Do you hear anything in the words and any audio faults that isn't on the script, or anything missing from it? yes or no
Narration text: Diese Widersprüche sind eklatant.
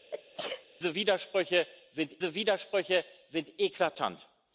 yes